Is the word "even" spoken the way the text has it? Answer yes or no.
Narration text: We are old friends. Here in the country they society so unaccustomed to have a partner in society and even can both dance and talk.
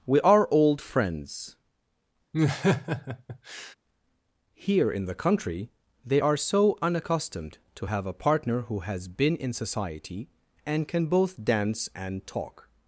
no